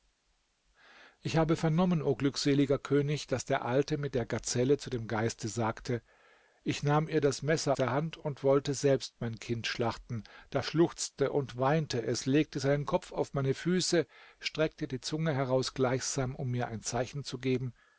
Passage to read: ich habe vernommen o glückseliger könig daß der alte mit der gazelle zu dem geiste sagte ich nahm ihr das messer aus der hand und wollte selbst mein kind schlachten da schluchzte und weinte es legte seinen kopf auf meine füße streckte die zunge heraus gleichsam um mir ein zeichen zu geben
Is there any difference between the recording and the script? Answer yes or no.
yes